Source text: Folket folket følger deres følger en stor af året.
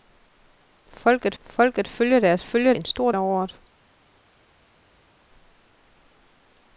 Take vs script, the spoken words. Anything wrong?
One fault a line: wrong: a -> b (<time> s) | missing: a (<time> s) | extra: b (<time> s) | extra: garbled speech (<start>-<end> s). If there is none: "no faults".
no faults